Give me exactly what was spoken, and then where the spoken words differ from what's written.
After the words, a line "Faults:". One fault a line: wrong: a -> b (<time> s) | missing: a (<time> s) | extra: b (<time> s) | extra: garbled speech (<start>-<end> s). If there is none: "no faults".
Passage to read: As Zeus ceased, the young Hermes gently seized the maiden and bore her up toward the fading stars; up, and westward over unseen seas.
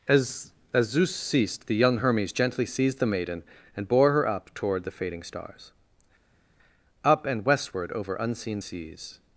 As as Zeus ceased, the young Hermes gently seized the maiden and bore her up toward the fading stars; up, and westward over unseen seas.
Faults:
extra: as (0.7 s)